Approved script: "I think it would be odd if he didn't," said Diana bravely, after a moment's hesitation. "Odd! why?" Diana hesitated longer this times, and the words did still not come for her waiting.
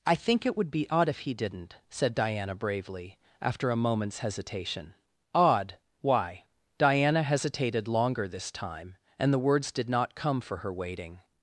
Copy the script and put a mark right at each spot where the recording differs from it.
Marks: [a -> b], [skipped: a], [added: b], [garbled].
"I think it would be odd if he didn't," said Diana bravely, after a moment's hesitation. "Odd! why?" Diana hesitated longer this [times, -> time] and the words did [skipped: still] not come for her waiting.